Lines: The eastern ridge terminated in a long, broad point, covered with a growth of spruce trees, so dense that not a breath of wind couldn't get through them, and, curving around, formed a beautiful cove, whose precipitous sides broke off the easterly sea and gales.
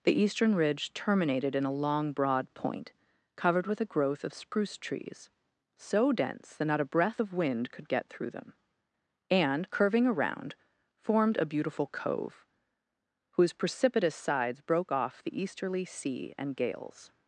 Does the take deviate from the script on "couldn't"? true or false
true